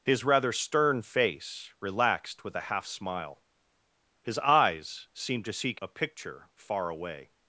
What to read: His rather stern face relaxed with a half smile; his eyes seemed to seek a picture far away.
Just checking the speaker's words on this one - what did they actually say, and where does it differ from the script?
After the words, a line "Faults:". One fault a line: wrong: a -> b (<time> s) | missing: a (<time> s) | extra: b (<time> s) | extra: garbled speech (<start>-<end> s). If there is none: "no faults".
His rather stern face relaxed with a half smile; his eyes seemed to seek a picture far away.
Faults:
no faults